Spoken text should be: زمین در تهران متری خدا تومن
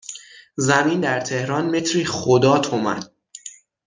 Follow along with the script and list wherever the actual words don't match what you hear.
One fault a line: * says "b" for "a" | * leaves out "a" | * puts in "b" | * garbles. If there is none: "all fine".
all fine